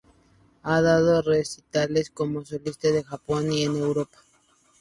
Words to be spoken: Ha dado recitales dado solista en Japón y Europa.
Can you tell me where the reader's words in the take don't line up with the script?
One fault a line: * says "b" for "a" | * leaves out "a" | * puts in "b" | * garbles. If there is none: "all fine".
* says "como" for "dado"
* puts in "en"